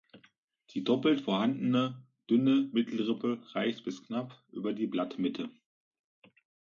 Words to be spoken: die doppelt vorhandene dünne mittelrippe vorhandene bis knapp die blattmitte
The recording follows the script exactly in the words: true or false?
false